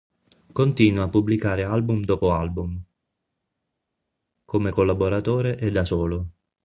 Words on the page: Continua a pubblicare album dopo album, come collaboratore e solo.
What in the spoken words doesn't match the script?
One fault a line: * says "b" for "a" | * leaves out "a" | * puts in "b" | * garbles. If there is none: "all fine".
* puts in "da"